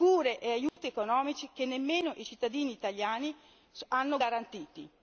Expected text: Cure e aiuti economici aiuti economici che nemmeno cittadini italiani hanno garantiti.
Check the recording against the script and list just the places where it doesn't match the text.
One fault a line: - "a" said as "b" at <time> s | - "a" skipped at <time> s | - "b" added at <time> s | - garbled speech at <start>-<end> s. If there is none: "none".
- "aiuti economici" skipped at 1.5 s
- "i" added at 2.1 s